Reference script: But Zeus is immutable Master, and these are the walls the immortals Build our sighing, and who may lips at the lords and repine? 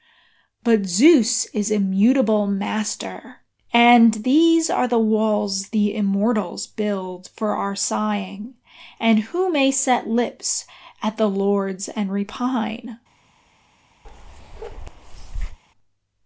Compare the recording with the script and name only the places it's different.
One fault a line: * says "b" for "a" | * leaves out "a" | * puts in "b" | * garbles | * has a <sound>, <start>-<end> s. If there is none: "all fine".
* puts in "for"
* puts in "set"
* has a bark, 14.0-15.6 s